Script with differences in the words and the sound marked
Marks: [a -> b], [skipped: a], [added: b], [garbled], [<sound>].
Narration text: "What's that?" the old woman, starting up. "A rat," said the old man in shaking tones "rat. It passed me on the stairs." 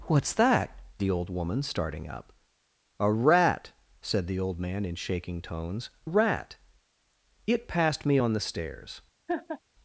"What's that?" the old woman, starting up. "A rat," said the old man in shaking tones "rat. It passed me on the stairs." [laugh]